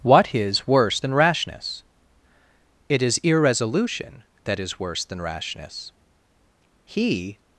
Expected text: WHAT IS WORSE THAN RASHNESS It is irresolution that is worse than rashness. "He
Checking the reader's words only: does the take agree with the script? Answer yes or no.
yes